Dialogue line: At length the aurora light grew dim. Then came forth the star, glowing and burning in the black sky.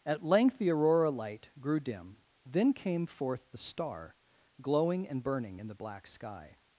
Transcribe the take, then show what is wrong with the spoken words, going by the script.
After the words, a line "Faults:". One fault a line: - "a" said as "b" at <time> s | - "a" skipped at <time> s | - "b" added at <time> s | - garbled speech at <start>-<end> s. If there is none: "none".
At length the aurora light grew dim. Then came forth the star, glowing and burning in the black sky.
Faults:
none